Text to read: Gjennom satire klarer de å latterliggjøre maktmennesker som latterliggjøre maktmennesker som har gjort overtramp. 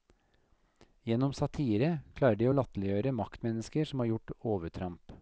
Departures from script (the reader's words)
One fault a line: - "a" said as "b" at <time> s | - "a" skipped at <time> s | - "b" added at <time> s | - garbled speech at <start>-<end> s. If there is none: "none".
- "latterliggjøre maktmennesker som" skipped at 4.0 s